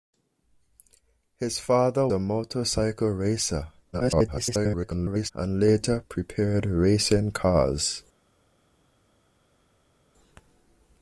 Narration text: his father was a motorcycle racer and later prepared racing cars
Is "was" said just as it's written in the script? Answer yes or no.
no